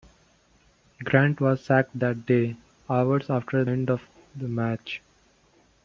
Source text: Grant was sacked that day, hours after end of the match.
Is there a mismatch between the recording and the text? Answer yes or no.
no